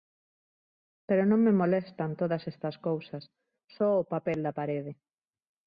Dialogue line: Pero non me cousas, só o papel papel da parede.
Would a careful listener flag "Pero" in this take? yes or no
no